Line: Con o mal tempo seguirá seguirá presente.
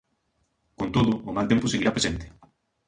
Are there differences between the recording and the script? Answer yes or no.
yes